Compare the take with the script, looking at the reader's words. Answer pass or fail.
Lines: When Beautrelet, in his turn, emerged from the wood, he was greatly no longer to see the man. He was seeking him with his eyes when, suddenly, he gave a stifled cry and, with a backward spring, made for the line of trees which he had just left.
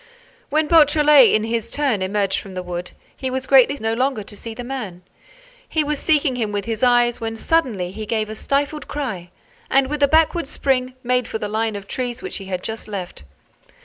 pass